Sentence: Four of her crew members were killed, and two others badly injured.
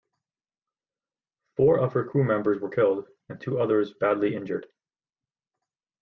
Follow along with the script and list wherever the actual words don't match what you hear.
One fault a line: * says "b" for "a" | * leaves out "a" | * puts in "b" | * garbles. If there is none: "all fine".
all fine